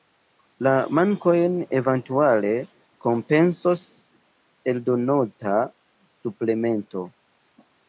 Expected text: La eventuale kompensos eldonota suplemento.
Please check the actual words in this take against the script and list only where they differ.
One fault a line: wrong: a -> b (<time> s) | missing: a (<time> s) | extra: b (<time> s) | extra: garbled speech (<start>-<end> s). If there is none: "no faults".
extra: mankojn (1.0 s)